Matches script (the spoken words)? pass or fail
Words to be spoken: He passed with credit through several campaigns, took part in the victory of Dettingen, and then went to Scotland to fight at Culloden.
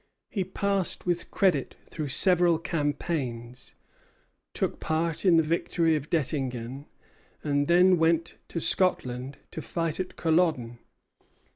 pass